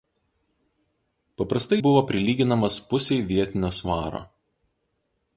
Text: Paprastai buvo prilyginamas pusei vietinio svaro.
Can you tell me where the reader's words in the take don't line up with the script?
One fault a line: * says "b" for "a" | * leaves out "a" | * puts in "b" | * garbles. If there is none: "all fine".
all fine